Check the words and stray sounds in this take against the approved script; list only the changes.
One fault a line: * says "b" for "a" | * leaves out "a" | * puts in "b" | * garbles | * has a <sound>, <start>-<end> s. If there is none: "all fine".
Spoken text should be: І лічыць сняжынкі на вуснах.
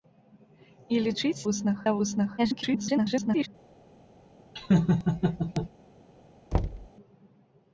* says "вуснах" for "сняжынкі"
* garbles
* has a laugh, 4.6-5.7 s
* has a thud, 6.5-6.9 s